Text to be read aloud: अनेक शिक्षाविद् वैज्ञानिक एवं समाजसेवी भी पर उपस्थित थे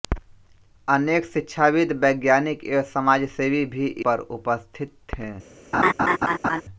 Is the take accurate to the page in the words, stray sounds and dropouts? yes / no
no